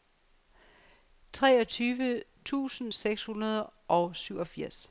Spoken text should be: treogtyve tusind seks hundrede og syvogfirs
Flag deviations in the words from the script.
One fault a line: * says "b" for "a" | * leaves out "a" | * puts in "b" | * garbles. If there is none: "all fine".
all fine